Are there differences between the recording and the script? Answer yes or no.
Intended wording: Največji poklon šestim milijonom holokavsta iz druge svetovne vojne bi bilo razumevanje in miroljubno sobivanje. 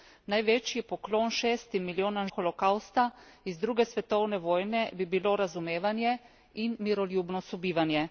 no